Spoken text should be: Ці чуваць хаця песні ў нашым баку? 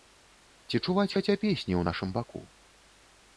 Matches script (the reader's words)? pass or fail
pass